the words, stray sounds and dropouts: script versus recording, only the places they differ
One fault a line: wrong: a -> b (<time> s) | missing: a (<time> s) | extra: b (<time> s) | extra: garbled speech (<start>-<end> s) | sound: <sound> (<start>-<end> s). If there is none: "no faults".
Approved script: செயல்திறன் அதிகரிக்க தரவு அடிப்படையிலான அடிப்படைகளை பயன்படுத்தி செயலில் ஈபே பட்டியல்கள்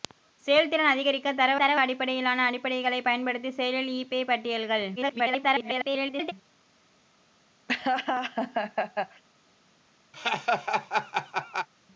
extra: தரவு (1.5 s)
extra: garbled speech (5.0-6.3 s)
sound: laugh (7.7-9.2 s)
sound: laugh (10.1-11.7 s)